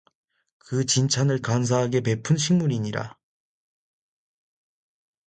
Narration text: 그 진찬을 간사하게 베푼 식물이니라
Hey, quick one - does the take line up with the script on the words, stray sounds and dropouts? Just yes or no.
yes